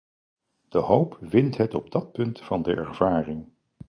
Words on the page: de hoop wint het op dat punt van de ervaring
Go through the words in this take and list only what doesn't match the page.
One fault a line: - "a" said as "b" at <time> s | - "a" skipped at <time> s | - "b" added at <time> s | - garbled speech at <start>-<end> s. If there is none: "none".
none